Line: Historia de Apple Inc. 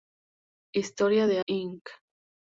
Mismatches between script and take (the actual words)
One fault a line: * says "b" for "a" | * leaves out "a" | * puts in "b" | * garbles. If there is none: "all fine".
* leaves out "Apple"